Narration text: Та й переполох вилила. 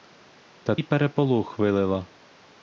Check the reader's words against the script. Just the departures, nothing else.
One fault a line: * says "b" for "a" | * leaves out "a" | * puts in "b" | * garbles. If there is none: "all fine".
all fine